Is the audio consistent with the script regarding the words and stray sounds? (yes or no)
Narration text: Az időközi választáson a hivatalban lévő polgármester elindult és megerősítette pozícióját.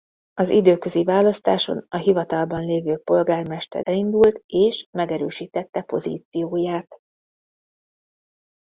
yes